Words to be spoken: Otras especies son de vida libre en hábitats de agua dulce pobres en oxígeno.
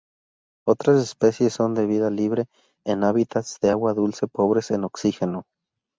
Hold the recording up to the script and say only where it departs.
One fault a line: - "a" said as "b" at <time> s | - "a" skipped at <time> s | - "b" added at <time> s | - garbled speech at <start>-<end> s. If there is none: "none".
none